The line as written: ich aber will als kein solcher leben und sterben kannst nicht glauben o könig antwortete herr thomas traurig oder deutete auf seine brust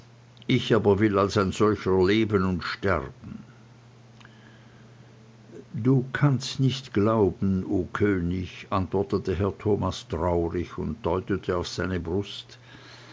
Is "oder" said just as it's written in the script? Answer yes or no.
no